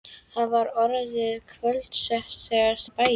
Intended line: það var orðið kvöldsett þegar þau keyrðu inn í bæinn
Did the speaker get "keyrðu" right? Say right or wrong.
wrong